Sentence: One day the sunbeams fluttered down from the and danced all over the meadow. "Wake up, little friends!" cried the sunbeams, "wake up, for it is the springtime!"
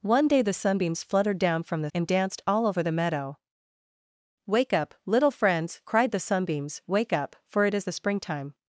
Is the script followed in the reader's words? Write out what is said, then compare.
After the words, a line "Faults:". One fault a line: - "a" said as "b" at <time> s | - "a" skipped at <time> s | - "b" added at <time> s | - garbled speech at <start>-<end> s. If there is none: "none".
One day the sunbeams fluttered down from the and danced all over the meadow. "Wake up, little friends!" cried the sunbeams, "wake up, for it is the springtime!"
Faults:
none